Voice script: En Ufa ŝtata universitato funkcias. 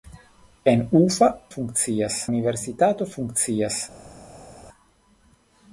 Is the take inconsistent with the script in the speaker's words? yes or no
yes